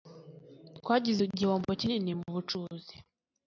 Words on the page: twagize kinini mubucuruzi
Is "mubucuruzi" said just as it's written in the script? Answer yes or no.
yes